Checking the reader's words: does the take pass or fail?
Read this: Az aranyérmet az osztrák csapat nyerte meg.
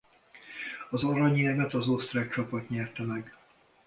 pass